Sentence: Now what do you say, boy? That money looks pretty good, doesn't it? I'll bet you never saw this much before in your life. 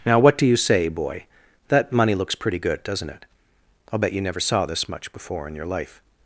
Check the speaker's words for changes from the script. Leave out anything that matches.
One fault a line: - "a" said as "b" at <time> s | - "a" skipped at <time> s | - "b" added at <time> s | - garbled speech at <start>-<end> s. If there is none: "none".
none